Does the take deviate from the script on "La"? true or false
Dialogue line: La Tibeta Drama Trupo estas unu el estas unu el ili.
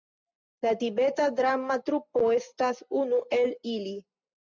false